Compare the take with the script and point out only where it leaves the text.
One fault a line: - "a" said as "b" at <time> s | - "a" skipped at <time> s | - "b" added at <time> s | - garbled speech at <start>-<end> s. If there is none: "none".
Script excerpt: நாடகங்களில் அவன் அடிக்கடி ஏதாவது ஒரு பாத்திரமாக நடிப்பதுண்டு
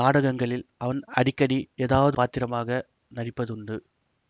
- "ஒரு" skipped at 2.2 s